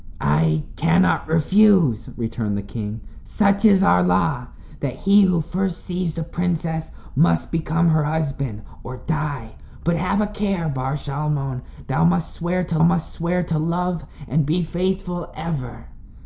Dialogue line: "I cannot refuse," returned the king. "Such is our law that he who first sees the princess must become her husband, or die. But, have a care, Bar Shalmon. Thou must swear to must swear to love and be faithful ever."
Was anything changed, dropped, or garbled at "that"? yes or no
no